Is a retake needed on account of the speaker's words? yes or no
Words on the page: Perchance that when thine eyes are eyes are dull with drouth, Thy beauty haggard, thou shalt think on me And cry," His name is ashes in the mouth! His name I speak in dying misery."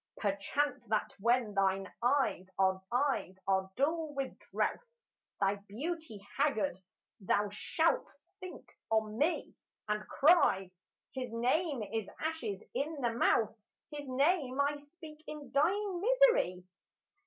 no